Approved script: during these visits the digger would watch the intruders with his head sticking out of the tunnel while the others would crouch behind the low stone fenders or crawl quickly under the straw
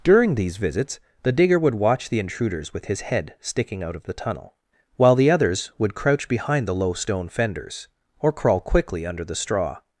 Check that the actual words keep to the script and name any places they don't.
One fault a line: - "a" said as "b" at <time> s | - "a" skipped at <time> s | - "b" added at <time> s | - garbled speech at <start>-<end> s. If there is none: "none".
none